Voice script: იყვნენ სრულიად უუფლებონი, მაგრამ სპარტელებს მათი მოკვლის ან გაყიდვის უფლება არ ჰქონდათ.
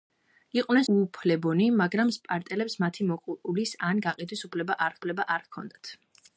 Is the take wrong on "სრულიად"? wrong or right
wrong